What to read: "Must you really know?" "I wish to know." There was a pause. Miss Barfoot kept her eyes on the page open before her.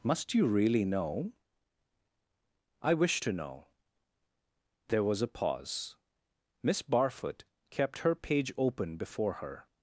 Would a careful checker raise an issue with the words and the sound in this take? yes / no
yes